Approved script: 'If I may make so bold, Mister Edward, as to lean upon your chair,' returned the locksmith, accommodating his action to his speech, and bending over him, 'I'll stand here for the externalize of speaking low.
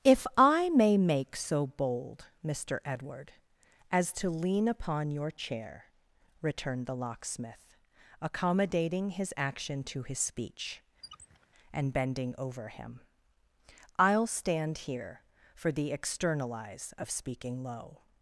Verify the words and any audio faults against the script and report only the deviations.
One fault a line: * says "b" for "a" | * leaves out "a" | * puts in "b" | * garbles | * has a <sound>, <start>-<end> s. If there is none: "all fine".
* has a squeak, 11.0-11.5 s